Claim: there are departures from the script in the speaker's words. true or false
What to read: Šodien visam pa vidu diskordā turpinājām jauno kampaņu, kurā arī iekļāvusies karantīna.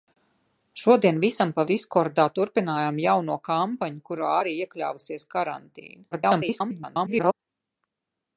true